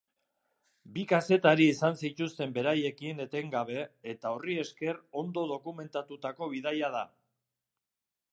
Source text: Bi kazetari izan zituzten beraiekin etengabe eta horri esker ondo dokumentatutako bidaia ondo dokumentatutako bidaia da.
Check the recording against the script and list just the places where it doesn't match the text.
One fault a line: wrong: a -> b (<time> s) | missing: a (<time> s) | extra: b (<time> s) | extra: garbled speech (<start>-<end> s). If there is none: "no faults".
missing: ondo dokumentatutako bidaia (6.9 s)